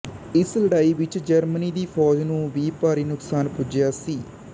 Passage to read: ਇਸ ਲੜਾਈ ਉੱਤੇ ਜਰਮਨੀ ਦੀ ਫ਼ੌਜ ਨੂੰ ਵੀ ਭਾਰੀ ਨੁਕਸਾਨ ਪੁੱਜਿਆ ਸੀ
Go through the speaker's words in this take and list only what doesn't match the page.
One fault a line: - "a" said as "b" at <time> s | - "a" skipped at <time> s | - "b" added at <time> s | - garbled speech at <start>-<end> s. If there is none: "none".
- "ਉੱਤੇ" said as "ਵਿੱਚ" at 0.9 s